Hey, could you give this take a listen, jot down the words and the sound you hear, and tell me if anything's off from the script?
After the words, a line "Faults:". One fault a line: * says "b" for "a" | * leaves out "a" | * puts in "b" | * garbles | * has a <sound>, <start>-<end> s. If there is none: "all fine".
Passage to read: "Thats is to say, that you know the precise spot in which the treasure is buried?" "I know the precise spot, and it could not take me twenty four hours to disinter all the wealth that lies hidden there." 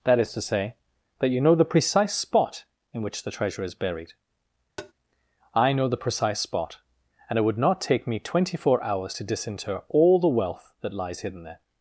"That is to say, that you know the precise spot in which the treasure is buried?" "I know the precise spot, and it would not take me twenty four hours to disinter all the wealth that lies hidden there."
Faults:
* says "That" for "Thats"
* has a tap, 4.8-4.9 s
* says "would" for "could"